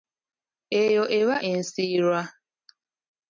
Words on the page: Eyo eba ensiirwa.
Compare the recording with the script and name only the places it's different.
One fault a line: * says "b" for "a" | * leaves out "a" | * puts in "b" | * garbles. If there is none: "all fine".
all fine